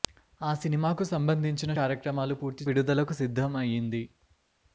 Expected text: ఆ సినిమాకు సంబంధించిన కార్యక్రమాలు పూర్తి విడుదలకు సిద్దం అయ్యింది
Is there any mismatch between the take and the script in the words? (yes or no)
no